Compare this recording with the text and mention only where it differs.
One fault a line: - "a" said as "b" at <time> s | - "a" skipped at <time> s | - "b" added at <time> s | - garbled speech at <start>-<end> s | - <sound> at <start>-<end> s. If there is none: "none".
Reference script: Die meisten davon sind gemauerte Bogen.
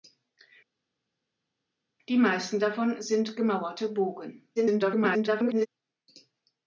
- garbled speech at 4.6-5.7 s